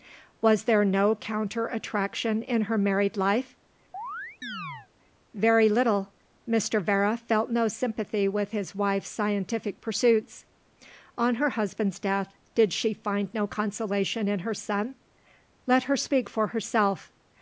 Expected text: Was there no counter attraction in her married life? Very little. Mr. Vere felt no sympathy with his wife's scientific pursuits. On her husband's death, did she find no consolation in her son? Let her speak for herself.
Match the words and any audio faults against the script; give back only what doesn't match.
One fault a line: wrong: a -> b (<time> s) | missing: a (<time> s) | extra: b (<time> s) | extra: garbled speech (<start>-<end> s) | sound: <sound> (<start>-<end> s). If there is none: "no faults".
sound: chirp (3.9-4.9 s)